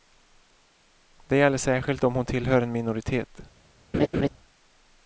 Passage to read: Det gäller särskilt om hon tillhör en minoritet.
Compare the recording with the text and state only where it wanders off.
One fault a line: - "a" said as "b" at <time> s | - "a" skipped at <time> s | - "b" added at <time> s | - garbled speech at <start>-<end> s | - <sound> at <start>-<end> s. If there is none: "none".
- laugh at 3.9-4.3 s